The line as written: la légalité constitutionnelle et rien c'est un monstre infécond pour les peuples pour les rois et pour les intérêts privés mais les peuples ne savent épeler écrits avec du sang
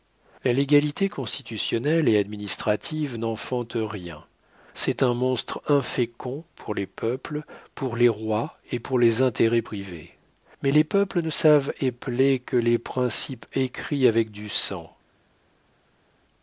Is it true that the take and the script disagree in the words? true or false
true